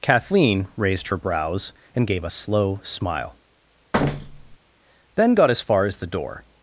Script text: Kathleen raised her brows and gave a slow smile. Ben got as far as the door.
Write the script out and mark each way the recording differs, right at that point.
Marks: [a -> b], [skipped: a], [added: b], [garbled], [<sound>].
Kathleen raised her brows and gave a slow smile. [thud] Ben got as far as the door.